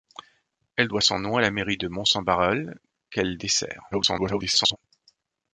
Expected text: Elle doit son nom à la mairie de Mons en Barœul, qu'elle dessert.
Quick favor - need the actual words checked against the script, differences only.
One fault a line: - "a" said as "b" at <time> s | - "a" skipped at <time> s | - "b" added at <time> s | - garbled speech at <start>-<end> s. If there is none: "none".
- garbled speech at 3.9-4.8 s